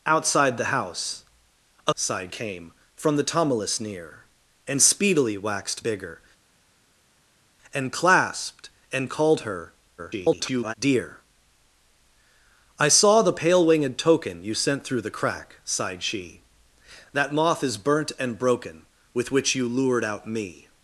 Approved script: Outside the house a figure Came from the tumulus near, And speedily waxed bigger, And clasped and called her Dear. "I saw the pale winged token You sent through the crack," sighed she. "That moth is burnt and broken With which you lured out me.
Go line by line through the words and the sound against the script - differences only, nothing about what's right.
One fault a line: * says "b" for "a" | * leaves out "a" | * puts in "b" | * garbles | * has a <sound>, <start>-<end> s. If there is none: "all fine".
* says "sighed" for "figure"
* garbles